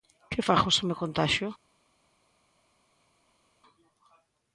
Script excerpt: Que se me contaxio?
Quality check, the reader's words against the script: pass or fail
fail